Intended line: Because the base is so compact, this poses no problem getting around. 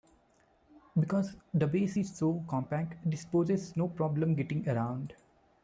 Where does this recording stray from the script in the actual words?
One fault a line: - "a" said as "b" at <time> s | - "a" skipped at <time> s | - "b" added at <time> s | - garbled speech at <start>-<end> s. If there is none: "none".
none